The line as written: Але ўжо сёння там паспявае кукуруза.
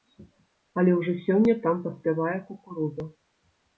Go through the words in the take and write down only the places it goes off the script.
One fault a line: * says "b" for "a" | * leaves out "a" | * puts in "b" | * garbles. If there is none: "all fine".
all fine